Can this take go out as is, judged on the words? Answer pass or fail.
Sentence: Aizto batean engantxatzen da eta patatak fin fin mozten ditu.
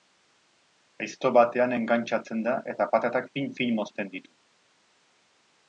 pass